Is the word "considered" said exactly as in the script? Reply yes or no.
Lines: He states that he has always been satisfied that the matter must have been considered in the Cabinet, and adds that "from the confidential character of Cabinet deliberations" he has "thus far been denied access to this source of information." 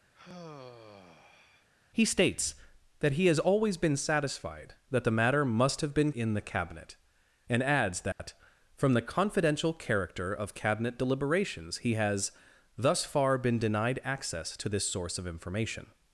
no